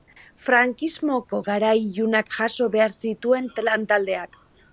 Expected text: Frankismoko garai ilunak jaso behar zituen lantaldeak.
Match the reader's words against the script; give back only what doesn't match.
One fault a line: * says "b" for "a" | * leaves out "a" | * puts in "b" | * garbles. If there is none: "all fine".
all fine